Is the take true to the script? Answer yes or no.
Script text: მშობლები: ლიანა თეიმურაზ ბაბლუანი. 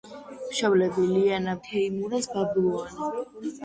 yes